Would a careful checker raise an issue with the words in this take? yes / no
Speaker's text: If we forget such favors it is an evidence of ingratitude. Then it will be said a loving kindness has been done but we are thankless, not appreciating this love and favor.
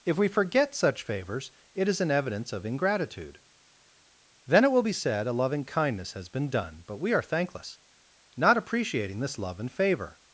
no